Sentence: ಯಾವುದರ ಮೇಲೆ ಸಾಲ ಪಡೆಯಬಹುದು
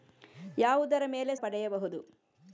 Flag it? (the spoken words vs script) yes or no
yes